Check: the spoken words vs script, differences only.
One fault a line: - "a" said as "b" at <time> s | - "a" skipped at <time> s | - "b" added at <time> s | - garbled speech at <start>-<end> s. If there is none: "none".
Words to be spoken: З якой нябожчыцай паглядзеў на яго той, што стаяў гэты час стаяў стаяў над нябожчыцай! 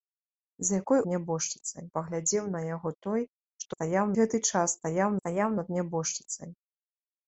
none